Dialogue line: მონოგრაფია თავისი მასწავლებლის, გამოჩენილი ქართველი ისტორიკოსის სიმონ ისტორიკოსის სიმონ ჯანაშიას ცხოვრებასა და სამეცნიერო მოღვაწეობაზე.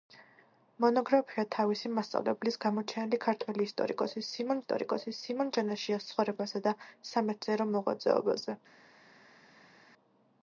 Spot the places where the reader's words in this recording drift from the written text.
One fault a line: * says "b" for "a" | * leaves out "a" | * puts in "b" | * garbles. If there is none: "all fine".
all fine